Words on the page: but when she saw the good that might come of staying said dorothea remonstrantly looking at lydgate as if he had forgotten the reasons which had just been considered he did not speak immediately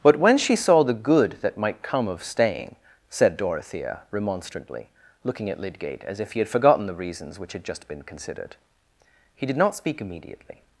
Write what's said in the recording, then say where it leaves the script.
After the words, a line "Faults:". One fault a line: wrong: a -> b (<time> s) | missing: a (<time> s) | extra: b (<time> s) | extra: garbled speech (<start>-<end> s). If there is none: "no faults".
but when she saw the good that might come of staying said dorothea remonstrantly looking at lydgate as if he had forgotten the reasons which had just been considered he did not speak immediately
Faults:
no faults